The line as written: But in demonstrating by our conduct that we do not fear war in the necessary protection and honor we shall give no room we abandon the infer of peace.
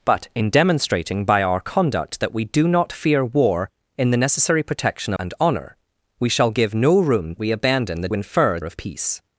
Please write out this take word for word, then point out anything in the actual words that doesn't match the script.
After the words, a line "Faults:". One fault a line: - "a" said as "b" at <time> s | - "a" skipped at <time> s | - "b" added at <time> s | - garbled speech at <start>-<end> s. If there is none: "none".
But in demonstrating by our conduct that we do not fear war in the necessary protection and honor we shall give no room we abandon the infer of peace.
Faults:
none